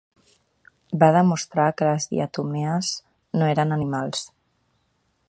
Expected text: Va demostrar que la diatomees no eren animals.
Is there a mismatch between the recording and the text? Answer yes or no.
yes